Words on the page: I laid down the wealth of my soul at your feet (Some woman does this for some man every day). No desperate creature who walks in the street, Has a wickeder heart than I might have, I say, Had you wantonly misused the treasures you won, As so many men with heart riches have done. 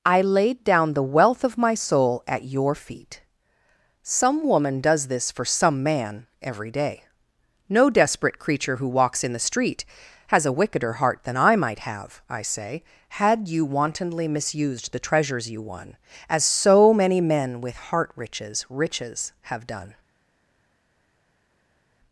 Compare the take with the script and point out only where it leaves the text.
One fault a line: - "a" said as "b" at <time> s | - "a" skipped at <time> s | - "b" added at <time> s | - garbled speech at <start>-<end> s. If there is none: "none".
- "riches" added at 18.7 s